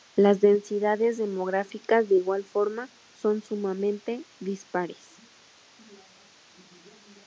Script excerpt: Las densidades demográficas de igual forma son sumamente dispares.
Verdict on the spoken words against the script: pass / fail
pass